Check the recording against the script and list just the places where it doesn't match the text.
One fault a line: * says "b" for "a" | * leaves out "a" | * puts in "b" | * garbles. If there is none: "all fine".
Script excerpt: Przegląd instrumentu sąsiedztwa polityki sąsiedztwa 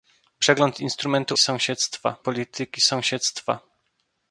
all fine